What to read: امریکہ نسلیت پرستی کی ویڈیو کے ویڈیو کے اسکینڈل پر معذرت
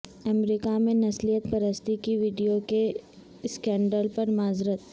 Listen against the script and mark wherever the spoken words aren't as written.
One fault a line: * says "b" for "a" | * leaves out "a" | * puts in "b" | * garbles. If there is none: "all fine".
* puts in "میں"
* leaves out "ویڈیو کے"